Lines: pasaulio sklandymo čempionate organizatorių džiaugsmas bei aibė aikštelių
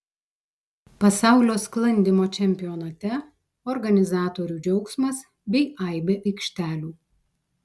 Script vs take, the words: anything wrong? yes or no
no